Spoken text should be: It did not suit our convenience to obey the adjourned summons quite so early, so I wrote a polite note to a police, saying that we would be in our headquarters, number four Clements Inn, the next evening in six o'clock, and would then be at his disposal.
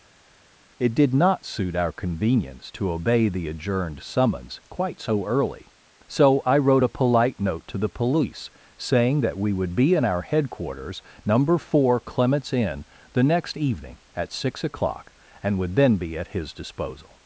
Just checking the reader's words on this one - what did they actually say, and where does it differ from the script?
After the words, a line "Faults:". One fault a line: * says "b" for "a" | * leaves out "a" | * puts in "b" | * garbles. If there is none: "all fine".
It did not suit our convenience to obey the adjourned summons quite so early, so I wrote a polite note to the police, saying that we would be in our headquarters, number four Clements Inn, the next evening at six o'clock, and would then be at his disposal.
Faults:
* says "the" for "a"
* says "at" for "in"